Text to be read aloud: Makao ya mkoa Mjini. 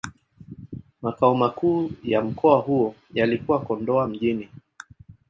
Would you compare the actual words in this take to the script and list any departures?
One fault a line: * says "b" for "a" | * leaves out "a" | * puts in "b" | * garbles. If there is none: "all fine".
* puts in "makuu"
* puts in "huo yalikuwa Kondoa"